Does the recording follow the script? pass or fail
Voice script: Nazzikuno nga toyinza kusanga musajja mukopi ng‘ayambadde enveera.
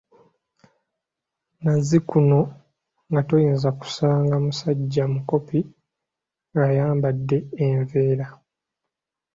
pass